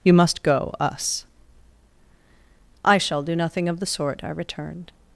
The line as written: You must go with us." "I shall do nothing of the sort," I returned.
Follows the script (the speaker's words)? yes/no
no